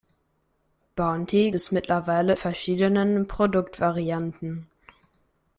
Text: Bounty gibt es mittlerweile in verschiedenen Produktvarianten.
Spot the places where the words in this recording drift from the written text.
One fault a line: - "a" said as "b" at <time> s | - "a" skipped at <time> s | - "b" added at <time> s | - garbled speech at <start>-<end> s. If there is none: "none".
- "gibt" skipped at 1.5 s
- "in" skipped at 2.3 s